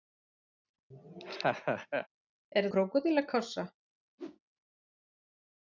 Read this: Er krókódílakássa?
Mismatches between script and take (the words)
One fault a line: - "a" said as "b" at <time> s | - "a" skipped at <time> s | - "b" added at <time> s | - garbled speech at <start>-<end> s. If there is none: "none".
none